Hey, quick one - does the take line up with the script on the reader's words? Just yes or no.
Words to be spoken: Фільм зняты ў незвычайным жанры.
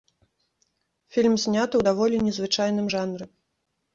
no